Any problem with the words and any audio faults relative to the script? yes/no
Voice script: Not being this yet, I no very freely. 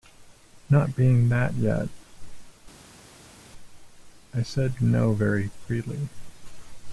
yes